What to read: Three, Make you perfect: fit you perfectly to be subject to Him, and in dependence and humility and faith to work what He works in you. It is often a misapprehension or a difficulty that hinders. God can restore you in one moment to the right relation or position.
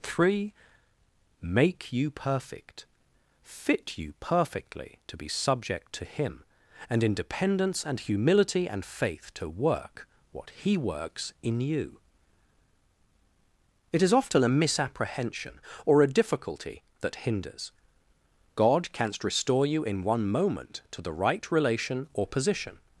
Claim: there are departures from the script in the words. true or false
true